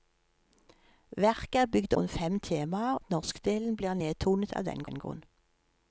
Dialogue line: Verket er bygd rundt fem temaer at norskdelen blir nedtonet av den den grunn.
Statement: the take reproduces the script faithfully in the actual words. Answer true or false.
true